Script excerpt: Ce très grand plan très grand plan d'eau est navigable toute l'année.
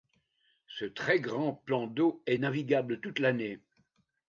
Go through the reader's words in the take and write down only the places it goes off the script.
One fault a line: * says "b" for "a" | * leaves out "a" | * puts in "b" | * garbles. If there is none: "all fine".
* leaves out "très grand plan"